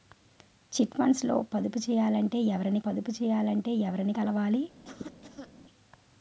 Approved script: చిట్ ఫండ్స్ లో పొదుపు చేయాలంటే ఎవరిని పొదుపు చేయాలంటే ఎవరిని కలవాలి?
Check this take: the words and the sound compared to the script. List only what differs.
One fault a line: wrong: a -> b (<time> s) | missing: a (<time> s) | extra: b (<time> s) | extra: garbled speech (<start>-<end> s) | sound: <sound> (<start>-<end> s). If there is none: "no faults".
sound: cough (4.8-5.5 s)